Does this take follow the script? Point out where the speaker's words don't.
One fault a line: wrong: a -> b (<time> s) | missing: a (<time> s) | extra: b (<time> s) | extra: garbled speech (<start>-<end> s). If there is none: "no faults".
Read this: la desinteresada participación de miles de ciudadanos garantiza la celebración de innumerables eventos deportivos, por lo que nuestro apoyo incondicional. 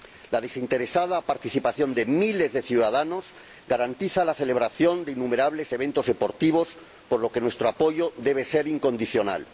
extra: debe ser (8.2 s)